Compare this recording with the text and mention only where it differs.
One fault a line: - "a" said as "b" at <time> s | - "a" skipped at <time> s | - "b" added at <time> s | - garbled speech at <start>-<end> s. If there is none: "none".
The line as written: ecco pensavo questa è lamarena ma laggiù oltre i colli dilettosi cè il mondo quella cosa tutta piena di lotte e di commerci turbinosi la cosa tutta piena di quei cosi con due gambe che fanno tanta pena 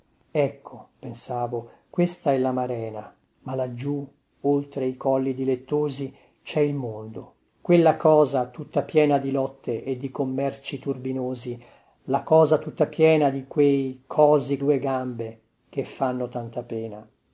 - "con" skipped at 14.6 s